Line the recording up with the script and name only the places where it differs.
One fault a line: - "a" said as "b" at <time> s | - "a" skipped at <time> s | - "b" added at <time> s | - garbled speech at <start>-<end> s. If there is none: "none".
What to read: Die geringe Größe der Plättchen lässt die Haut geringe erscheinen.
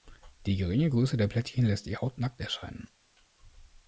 - "geringe" said as "nackt" at 2.2 s